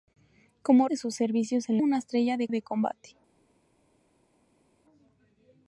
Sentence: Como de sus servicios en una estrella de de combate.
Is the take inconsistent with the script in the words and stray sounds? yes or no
no